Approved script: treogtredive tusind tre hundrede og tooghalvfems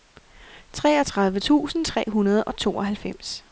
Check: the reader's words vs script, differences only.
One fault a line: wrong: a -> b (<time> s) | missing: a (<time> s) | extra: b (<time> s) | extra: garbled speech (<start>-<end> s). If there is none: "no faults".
no faults